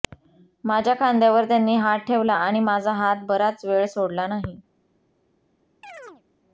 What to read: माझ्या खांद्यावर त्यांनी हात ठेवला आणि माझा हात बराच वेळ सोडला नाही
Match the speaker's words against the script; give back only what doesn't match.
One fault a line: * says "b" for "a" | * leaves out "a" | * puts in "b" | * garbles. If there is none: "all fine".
all fine